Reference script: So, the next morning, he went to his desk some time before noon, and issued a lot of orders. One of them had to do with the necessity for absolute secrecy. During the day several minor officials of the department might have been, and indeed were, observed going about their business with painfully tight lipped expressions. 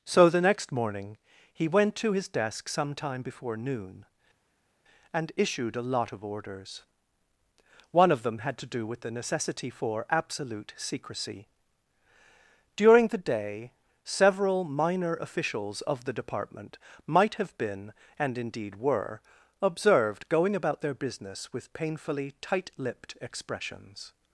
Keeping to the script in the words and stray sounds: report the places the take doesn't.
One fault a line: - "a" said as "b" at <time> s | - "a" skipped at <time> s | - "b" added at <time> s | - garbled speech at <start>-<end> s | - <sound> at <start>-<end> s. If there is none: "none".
none